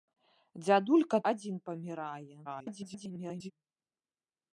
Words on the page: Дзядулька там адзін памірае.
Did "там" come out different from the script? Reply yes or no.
yes